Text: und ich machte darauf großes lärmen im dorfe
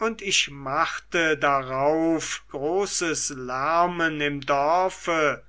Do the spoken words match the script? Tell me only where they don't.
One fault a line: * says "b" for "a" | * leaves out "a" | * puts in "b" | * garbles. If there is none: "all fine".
all fine